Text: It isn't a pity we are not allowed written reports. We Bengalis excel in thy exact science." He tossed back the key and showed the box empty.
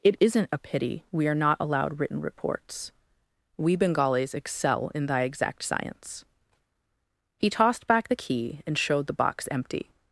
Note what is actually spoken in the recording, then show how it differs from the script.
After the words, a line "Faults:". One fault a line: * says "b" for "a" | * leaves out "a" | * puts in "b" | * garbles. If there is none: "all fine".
It isn't a pity we are not allowed written reports. We Bengalis excel in thy exact science." He tossed back the key and showed the box empty.
Faults:
all fine